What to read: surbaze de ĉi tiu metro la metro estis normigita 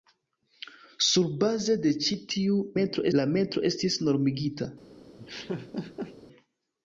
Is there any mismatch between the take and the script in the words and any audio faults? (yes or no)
yes